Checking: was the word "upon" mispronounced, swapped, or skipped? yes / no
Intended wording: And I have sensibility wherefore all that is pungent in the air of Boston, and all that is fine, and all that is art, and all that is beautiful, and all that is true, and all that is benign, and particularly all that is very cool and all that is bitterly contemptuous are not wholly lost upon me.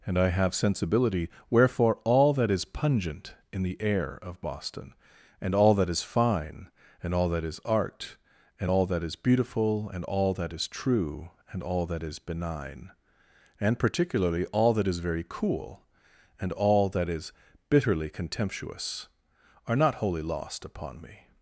no